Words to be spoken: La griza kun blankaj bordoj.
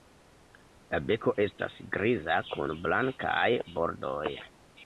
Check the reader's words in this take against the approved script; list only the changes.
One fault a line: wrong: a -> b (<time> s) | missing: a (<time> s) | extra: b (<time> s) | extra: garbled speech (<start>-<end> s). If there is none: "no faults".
extra: beko estas (1.1 s)